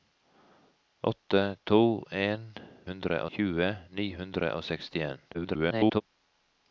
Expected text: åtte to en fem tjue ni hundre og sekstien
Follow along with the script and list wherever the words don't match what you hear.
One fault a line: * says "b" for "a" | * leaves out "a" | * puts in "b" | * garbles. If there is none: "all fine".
* says "hundre" for "fem"
* garbles